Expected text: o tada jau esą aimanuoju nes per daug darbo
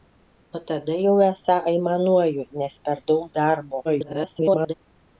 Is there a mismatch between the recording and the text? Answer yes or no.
yes